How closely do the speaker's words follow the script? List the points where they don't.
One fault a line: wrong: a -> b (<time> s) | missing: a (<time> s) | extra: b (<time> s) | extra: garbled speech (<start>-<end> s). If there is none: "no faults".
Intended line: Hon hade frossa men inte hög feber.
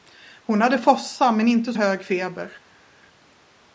no faults